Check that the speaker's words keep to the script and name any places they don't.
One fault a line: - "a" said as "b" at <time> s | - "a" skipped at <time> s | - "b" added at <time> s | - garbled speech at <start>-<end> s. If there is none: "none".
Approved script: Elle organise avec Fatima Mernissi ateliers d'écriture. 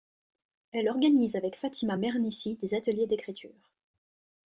- "des" added at 2.6 s